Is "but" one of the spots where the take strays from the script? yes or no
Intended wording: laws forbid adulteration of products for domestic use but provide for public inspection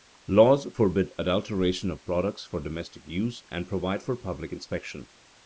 yes